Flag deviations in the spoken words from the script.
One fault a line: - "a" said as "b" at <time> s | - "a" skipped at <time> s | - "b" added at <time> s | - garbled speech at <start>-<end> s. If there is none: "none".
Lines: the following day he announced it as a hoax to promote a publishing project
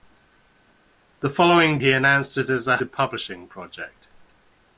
- "day" skipped at 1.8 s
- "hoax to promote" skipped at 2.8 s